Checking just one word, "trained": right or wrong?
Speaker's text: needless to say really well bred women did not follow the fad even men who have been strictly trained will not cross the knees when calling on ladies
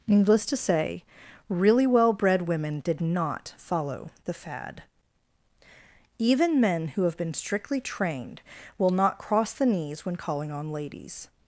right